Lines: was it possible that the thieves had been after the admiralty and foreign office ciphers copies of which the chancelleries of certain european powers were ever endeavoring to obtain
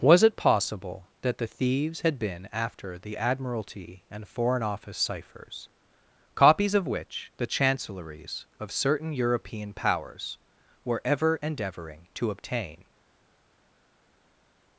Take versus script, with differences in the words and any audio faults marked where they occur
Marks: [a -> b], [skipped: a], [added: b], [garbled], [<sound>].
was it possible that the thieves had been after the admiralty and foreign office ciphers copies of which the chancelleries of certain european powers were ever endeavoring to obtain